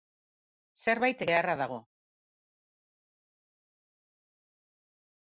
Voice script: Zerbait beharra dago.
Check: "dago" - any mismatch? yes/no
no